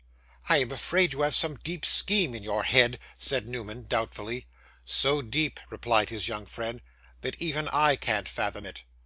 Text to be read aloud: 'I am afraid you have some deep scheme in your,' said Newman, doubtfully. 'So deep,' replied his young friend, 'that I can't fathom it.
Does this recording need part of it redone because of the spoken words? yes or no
yes